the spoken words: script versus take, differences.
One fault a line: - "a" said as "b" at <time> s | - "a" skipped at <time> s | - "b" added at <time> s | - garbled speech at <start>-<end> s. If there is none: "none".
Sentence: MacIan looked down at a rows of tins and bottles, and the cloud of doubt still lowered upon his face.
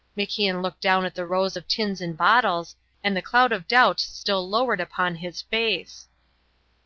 - "a" said as "the" at 1.1 s